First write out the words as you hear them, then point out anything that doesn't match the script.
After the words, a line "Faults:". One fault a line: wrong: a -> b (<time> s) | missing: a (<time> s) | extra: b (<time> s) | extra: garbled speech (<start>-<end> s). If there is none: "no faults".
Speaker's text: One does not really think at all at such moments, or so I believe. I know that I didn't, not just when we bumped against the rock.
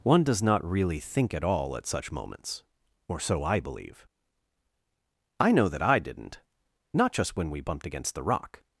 One does not really think at all at such moments, or so I believe. I know that I didn't, not just when we bumped against the rock.
Faults:
no faults